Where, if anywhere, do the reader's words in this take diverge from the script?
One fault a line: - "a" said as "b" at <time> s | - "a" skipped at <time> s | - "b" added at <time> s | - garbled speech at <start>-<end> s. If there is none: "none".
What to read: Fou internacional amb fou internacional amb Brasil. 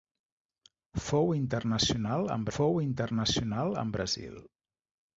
none